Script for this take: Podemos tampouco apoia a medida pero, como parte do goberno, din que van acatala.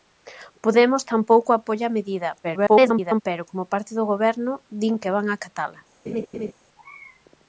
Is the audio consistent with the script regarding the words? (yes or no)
no